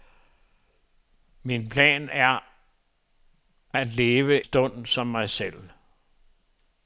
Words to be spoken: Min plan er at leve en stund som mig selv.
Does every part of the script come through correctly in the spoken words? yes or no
no